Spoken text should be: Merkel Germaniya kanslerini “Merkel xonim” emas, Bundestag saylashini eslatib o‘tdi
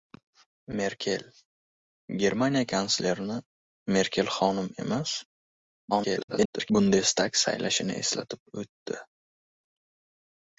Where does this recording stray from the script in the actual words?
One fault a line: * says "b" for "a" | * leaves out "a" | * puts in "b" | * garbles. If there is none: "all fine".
* garbles